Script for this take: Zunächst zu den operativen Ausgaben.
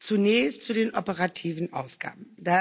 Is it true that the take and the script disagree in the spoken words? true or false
false